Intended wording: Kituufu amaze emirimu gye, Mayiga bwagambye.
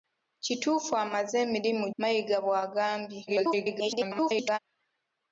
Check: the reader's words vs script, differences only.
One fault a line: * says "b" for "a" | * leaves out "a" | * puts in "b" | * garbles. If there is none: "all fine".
* leaves out "gye"
* garbles